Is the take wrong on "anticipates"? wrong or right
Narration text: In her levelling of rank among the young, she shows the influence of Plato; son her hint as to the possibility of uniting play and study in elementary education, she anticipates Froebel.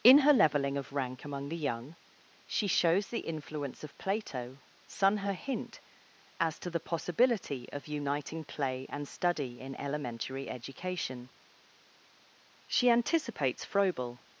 right